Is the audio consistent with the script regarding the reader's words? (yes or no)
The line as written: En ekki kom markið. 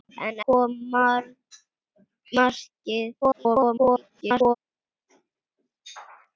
no